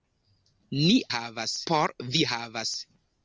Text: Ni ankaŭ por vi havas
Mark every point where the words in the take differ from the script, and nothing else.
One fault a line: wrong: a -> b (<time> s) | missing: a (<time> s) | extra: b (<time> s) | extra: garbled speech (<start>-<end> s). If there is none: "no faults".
wrong: ankaŭ -> havas (1.2 s)